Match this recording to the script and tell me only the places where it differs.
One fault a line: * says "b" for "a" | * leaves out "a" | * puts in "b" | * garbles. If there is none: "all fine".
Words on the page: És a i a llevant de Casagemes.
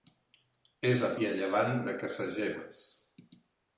all fine